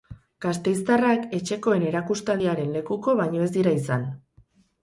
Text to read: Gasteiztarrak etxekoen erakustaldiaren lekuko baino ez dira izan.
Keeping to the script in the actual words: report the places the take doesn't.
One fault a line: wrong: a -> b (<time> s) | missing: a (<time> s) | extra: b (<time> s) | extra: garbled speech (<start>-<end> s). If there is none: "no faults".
no faults